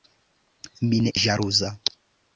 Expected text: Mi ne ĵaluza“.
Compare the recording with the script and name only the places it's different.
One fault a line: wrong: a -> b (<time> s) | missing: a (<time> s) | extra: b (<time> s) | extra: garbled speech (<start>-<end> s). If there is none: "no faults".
no faults